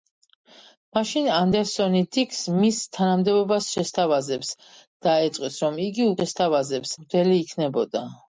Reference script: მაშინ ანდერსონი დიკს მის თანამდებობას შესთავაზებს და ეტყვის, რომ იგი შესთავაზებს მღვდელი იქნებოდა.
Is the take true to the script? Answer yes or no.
yes